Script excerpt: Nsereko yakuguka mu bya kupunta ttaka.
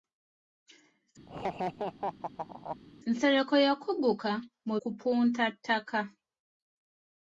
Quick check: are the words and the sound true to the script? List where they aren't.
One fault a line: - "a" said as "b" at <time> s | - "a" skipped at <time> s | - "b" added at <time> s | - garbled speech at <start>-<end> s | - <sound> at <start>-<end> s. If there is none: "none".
- laugh at 1.3-2.8 s
- "bya" skipped at 4.8 s